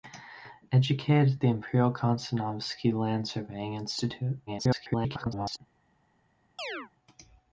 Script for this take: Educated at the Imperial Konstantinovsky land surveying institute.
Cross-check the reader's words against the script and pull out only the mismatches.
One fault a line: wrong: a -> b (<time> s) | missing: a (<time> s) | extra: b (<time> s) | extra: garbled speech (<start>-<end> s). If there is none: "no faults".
extra: garbled speech (4.5-5.6 s)